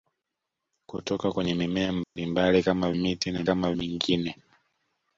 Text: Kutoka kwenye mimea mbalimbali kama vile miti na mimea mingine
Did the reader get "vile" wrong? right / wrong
wrong